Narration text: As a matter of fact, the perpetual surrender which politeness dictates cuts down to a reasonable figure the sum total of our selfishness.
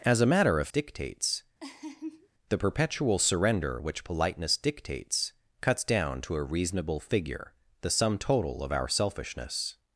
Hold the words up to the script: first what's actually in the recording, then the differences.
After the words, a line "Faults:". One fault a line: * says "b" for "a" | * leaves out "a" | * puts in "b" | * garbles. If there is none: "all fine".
As a matter of dictates, the perpetual surrender which politeness dictates cuts down to a reasonable figure the sum total of our selfishness.
Faults:
* says "dictates" for "fact"